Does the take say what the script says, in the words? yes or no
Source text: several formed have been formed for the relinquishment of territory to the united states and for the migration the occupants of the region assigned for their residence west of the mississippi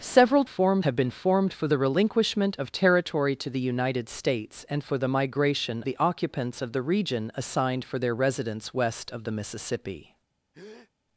yes